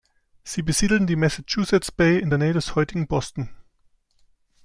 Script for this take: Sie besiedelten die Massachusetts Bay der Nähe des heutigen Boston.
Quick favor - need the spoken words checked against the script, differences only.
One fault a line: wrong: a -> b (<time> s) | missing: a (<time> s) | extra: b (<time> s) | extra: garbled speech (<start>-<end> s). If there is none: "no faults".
extra: in (2.2 s)